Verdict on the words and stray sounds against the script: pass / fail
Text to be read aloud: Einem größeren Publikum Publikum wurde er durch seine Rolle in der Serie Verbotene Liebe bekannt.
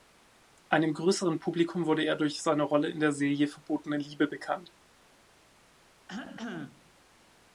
fail